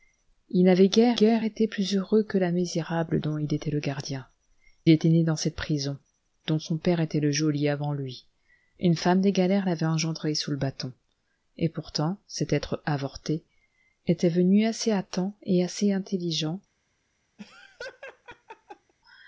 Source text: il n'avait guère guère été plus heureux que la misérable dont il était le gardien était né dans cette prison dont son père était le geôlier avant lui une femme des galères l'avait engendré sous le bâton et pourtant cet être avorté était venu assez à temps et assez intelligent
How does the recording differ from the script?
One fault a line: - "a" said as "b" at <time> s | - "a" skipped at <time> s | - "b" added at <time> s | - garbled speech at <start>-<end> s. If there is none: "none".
none